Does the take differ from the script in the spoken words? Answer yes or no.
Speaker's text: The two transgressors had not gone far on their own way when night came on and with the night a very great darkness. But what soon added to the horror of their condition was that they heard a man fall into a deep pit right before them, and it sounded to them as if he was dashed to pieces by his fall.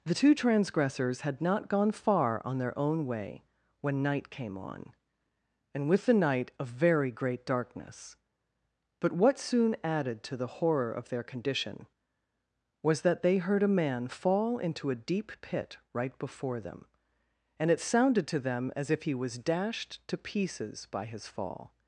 no